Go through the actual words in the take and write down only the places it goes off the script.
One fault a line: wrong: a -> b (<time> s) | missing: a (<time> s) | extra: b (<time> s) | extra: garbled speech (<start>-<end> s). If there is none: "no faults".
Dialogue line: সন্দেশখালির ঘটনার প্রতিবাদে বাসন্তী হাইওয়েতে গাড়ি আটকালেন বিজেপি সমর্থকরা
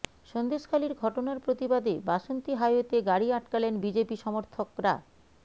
no faults